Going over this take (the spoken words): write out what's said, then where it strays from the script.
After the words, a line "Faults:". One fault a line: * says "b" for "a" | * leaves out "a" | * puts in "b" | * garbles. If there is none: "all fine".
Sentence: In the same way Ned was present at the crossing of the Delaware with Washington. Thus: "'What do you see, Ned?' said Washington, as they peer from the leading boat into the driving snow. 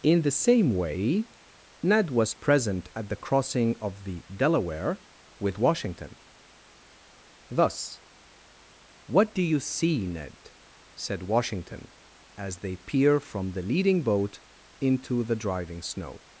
In the same way Ned was present at the crossing of the Delaware with Washington. Thus: "'What do you see, Ned?' said Washington, as they peer from the leading boat into the driving snow.
Faults:
all fine